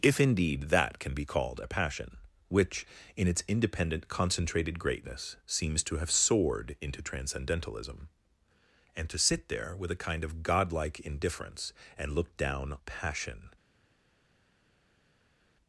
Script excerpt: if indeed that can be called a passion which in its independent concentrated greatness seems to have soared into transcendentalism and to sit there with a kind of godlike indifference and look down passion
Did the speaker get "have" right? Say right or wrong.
right